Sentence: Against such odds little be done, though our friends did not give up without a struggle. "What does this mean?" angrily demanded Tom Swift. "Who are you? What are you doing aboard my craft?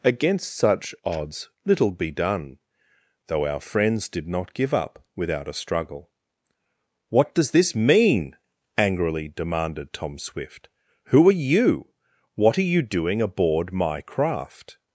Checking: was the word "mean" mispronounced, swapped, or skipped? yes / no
no